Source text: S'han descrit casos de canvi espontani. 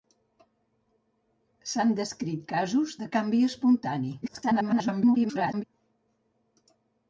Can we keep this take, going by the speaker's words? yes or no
no